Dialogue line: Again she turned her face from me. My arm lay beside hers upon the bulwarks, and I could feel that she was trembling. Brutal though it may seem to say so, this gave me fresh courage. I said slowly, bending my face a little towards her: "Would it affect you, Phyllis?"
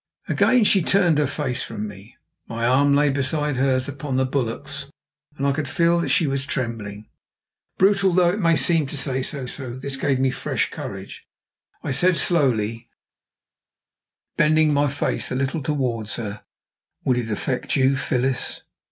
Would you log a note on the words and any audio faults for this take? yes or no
yes